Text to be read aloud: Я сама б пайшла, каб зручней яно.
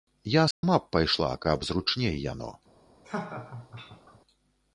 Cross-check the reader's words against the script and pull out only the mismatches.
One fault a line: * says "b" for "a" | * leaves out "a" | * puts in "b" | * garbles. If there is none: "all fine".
all fine